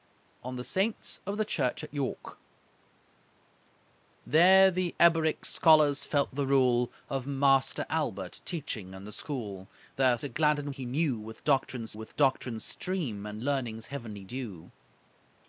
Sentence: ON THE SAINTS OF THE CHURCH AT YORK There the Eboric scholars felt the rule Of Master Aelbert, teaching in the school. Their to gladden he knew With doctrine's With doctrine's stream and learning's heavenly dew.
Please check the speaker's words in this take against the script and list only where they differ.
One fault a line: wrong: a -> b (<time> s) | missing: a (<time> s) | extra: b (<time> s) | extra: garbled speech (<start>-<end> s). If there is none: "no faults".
no faults